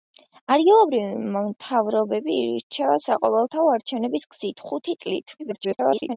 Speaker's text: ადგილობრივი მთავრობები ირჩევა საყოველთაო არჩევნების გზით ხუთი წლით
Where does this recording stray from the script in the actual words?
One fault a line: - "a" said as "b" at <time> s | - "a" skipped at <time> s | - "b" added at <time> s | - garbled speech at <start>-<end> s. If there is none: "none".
- garbled speech at 5.4-6.2 s